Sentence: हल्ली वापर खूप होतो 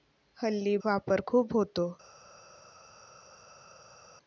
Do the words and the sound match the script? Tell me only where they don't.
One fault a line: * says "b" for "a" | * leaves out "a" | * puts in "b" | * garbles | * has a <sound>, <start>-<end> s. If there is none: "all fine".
all fine